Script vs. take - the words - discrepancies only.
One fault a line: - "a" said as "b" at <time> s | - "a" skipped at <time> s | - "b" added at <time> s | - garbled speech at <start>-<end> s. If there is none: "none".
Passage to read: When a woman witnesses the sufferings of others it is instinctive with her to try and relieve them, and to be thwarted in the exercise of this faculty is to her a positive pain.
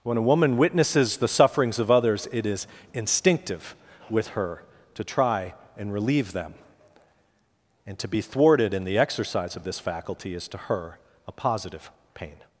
none